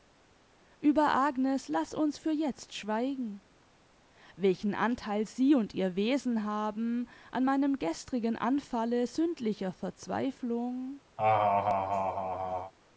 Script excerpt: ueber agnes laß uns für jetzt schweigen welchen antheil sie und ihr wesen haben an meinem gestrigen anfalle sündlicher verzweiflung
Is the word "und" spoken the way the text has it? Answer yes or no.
yes